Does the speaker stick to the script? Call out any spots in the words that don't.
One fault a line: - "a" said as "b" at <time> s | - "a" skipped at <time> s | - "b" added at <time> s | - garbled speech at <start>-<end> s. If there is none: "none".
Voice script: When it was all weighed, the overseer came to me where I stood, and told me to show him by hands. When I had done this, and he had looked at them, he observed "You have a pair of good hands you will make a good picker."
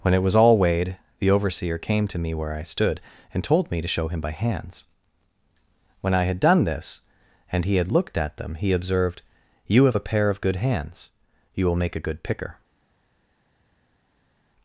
none